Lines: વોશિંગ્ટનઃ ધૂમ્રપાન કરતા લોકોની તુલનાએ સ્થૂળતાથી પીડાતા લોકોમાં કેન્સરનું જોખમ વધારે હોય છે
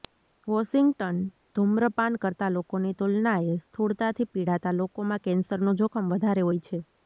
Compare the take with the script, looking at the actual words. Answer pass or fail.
pass